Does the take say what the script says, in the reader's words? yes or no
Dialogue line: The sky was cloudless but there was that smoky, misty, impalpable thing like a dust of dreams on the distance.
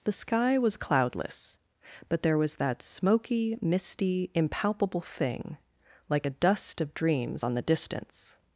yes